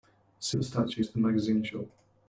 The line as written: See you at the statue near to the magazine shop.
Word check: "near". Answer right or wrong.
wrong